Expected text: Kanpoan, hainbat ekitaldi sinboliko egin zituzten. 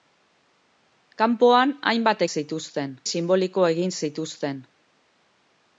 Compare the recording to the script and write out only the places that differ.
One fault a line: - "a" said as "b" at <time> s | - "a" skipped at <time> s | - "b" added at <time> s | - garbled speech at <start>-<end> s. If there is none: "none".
- "ekitaldi" said as "zituzten" at 2.3 s